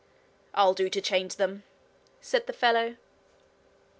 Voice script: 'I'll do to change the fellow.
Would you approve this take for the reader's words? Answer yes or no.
no